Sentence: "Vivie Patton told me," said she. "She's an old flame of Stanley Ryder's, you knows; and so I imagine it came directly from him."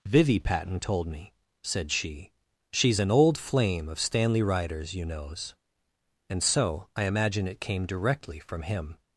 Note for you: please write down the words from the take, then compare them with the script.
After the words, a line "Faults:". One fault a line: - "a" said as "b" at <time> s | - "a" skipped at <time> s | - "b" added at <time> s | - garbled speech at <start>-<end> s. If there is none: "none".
"Vivie Patton told me," said she. "She's an old flame of Stanley Ryder's, you knows; and so I imagine it came directly from him."
Faults:
none